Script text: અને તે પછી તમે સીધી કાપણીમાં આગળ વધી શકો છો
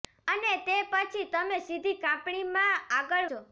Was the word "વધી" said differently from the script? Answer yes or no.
yes